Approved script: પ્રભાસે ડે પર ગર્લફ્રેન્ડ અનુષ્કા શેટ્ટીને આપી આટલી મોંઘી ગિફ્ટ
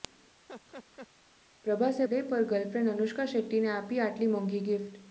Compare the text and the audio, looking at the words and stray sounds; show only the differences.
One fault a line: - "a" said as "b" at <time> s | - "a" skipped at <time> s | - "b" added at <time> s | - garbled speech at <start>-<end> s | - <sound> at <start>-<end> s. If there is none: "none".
- laugh at 0.5-1.1 s